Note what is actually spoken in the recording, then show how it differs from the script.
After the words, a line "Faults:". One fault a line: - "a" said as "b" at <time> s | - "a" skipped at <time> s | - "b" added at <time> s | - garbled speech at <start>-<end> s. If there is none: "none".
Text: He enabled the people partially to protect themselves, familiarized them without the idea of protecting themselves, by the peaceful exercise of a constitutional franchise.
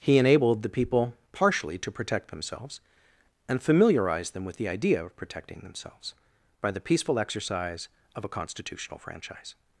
He enabled the people partially to protect themselves, and familiarized them with the idea of protecting themselves, by the peaceful exercise of a constitutional franchise.
Faults:
- "and" added at 3.5 s
- "without" said as "with" at 4.5 s